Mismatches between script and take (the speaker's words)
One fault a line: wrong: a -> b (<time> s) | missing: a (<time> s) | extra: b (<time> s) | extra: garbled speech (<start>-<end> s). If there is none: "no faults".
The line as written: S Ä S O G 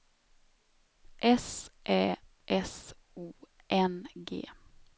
extra: N (3.7 s)